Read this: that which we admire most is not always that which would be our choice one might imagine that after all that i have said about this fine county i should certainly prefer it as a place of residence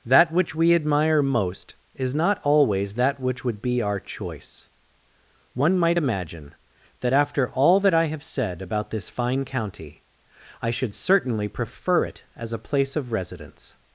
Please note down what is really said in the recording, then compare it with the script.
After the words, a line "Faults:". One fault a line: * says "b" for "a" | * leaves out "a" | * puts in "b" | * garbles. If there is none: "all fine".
that which we admire most is not always that which would be our choice one might imagine that after all that i have said about this fine county i should certainly prefer it as a place of residence
Faults:
all fine